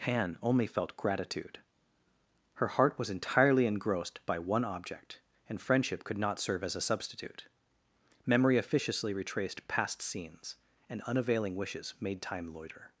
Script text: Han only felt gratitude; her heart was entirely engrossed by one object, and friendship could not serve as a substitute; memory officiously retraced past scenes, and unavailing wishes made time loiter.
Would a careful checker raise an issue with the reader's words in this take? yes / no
no